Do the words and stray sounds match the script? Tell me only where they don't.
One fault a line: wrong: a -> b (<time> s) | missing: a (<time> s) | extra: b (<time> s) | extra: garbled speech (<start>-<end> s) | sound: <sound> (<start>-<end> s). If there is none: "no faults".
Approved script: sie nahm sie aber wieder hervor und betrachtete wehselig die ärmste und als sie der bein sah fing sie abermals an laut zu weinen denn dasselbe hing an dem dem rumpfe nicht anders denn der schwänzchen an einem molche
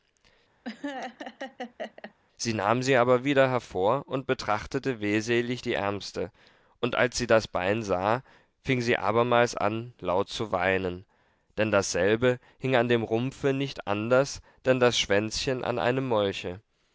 sound: laugh (0.6-2.1 s)
wrong: der -> das (7.2 s)
missing: dem (13.0 s)
wrong: der -> das (14.8 s)